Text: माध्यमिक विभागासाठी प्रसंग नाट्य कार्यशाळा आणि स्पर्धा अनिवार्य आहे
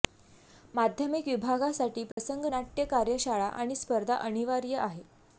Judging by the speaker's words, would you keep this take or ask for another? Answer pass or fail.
pass